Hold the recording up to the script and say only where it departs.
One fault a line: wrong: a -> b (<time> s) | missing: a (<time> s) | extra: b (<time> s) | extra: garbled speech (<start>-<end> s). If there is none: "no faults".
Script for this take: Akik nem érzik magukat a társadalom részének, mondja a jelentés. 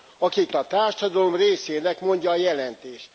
missing: nem érzik magukat (0.5 s)